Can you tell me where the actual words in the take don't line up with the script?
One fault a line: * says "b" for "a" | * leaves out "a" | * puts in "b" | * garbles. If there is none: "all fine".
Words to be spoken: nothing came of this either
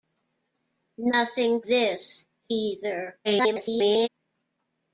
* leaves out "came of"
* garbles